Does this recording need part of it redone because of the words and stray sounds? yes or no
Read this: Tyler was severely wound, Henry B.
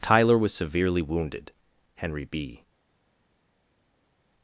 yes